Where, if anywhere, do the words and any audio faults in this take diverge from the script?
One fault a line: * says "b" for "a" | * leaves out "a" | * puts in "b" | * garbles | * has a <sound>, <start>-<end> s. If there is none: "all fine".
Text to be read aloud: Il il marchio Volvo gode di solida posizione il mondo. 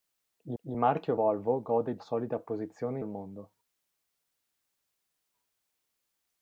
all fine